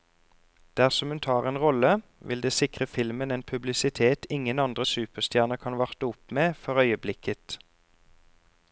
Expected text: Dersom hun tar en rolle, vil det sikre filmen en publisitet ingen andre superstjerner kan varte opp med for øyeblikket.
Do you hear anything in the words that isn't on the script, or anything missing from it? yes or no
no